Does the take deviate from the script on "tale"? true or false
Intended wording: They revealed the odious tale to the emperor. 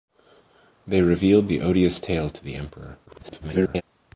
false